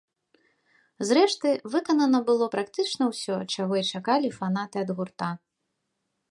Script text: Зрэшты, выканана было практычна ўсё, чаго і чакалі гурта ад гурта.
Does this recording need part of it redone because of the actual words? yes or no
yes